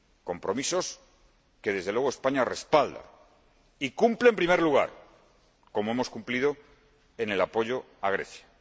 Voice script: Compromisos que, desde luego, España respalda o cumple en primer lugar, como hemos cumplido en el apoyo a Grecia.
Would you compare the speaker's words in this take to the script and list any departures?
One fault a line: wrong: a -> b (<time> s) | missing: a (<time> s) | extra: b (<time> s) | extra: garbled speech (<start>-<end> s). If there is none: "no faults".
wrong: o -> y (3.8 s)